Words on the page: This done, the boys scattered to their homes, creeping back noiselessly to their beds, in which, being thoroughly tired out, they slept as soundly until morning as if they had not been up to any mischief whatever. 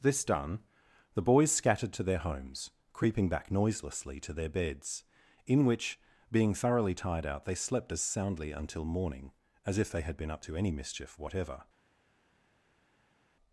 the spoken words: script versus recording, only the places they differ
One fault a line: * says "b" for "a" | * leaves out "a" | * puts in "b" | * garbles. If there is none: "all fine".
* leaves out "not"